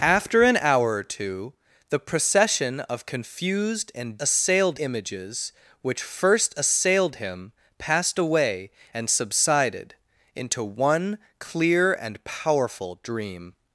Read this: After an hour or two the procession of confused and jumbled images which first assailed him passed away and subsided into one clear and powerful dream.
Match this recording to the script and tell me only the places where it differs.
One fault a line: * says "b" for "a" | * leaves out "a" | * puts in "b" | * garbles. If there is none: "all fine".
* says "assailed" for "jumbled"